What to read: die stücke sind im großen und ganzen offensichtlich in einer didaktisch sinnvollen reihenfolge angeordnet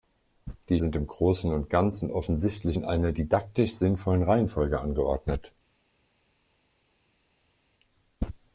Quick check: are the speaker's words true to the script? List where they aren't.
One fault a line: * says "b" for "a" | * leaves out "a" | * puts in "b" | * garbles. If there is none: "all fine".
* leaves out "stücke"